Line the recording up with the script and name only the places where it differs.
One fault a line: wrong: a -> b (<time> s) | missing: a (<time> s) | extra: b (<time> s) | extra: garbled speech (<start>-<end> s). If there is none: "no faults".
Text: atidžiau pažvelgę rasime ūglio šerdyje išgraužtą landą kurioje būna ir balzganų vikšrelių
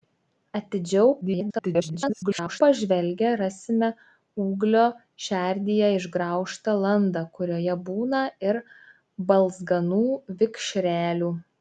extra: garbled speech (1.2-2.6 s)